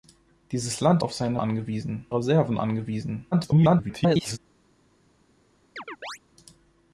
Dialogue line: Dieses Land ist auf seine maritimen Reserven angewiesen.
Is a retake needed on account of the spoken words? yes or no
yes